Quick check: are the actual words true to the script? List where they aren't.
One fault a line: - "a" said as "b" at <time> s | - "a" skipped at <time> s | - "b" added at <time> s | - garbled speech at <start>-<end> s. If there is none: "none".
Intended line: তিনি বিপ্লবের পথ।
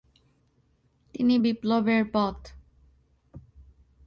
none